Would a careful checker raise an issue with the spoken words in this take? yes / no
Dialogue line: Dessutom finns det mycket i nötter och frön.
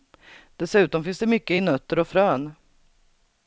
no